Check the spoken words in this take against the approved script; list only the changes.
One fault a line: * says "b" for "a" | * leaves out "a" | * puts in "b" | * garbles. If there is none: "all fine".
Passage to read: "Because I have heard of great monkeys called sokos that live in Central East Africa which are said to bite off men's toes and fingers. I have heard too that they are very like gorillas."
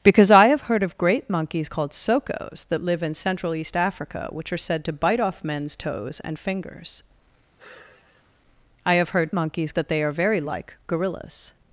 * says "monkeys" for "too"